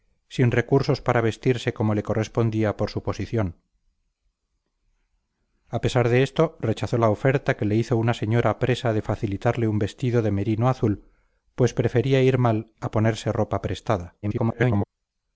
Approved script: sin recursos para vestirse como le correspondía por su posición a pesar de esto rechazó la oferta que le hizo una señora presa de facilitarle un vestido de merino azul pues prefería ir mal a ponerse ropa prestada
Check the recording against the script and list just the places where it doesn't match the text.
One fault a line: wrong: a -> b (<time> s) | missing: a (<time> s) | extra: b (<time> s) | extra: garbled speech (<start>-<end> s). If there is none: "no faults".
extra: garbled speech (14.2-14.9 s)